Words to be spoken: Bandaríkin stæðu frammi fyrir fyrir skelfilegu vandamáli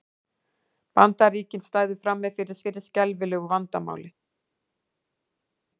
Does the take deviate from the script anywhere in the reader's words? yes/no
no